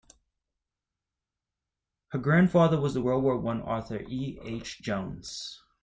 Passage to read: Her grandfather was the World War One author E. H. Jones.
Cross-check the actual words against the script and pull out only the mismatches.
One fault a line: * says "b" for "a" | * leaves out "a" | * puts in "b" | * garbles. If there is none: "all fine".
all fine